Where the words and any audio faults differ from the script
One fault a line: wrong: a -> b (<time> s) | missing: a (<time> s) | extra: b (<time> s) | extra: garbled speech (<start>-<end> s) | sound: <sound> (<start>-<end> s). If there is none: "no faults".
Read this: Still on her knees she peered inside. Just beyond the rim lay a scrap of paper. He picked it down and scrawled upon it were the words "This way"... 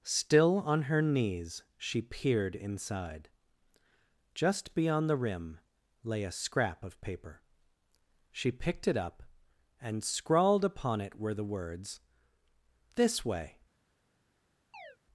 wrong: He -> She (8.3 s)
wrong: down -> up (9.0 s)
sound: chirp (14.7-15.0 s)